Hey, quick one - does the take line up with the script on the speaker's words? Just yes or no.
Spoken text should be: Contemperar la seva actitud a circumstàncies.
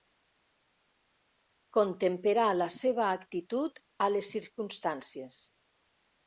no